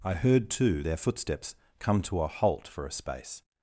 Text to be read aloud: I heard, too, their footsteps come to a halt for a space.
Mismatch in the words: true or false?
false